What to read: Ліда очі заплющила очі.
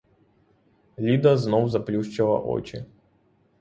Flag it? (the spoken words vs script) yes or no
yes